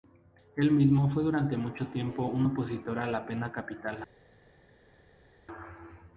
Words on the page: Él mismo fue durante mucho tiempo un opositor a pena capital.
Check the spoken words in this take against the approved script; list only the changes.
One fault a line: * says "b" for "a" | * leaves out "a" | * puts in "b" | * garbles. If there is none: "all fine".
* puts in "la"